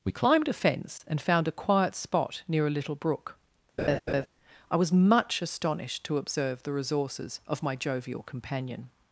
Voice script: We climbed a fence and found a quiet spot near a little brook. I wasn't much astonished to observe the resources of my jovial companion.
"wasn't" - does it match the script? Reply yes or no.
no